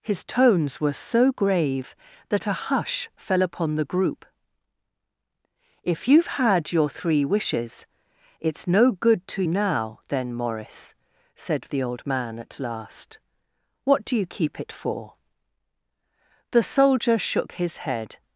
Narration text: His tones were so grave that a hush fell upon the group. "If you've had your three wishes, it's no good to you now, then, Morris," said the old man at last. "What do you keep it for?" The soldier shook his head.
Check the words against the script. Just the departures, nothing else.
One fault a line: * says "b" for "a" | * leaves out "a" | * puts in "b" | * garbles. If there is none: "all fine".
* leaves out "you"